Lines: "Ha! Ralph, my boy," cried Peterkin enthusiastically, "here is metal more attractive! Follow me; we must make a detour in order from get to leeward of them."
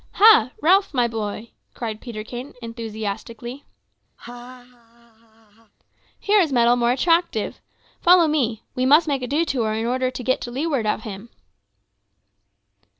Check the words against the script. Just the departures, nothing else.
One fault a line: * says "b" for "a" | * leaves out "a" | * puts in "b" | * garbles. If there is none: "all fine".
* says "to" for "from"
* says "him" for "them"